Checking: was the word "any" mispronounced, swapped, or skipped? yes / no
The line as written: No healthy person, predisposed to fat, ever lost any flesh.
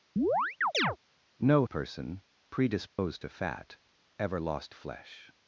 yes